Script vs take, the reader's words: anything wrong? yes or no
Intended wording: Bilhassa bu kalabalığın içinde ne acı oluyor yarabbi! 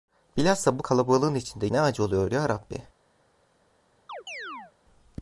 no